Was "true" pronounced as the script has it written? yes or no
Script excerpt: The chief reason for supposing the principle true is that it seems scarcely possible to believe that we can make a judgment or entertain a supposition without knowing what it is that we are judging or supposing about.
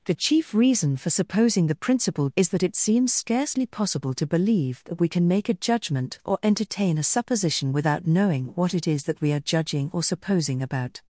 no